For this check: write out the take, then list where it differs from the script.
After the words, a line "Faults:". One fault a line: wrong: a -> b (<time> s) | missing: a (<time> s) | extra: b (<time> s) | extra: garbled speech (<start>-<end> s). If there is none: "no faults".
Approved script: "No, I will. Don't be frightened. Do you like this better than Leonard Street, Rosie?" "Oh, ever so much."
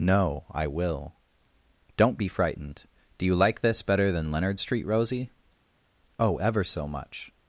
"No, I will. Don't be frightened. Do you like this better than Leonard Street, Rosie?" "Oh, ever so much."
Faults:
no faults